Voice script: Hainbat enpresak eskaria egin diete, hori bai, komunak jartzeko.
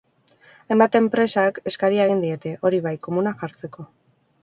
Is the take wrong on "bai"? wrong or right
right